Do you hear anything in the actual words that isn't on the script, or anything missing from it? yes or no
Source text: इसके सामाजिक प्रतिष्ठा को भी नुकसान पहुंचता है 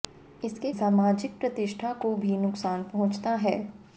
no